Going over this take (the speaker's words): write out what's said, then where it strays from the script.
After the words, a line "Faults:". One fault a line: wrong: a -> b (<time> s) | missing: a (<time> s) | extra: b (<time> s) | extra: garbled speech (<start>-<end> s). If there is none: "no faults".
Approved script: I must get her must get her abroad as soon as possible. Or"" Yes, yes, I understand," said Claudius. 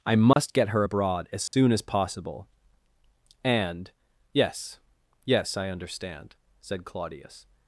I must get her abroad as soon as possible. And"" Yes, yes, I understand," said Claudius.
Faults:
missing: must get her (0.8 s)
wrong: Or -> And (3.4 s)